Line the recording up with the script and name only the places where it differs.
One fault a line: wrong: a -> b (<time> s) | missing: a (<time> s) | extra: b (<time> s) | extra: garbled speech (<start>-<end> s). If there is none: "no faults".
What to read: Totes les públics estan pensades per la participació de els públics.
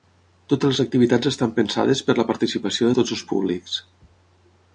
wrong: públics -> activitats (0.8 s)
extra: tots (3.0 s)